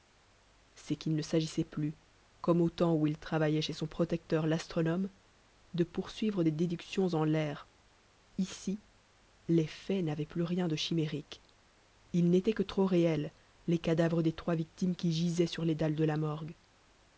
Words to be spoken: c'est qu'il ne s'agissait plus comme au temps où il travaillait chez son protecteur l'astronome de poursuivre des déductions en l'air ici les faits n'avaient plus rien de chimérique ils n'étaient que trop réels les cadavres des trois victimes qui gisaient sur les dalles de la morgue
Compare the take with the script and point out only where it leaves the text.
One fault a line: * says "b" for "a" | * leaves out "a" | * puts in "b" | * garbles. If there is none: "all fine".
all fine